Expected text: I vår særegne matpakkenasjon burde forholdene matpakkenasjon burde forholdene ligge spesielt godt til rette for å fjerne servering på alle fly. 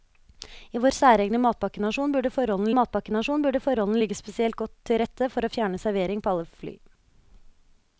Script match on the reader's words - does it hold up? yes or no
yes